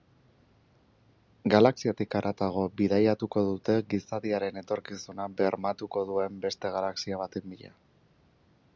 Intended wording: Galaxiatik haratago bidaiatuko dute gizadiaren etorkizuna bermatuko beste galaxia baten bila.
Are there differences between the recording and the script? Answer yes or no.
yes